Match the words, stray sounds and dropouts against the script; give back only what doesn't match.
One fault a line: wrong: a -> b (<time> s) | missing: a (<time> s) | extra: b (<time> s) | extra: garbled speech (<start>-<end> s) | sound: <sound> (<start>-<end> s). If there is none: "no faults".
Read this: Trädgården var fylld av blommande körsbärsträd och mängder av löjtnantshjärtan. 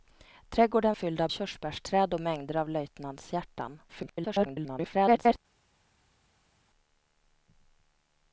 missing: var (0.9 s)
missing: blommande (1.3 s)
extra: garbled speech (3.9-5.4 s)